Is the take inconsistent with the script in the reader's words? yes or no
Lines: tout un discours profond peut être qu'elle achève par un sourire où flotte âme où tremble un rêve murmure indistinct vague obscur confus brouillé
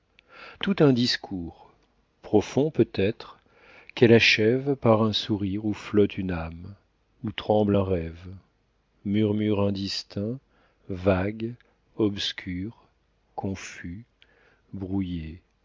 yes